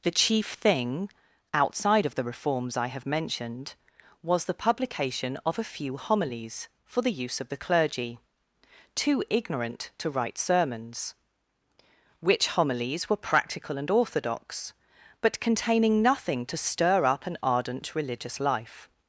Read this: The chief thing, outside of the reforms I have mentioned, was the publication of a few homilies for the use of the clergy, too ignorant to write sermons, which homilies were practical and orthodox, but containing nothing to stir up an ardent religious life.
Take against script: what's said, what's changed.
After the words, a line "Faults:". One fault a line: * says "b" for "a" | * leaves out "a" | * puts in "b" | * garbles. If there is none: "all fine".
The chief thing, outside of the reforms I have mentioned, was the publication of a few homilies for the use of the clergy, too ignorant to write sermons, which homilies were practical and orthodox, but containing nothing to stir up an ardent religious life.
Faults:
all fine